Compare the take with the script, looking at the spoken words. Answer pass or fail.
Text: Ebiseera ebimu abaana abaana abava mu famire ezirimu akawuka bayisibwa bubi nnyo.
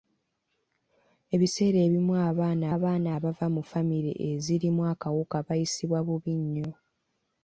pass